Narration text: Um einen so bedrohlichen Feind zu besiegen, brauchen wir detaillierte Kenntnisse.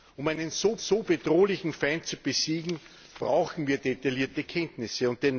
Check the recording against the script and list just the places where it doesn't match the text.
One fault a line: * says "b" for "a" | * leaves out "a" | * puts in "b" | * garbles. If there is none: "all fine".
* puts in "so"